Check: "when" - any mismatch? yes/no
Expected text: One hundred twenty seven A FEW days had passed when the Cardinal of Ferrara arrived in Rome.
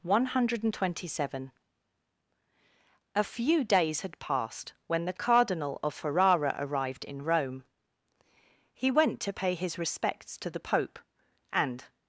no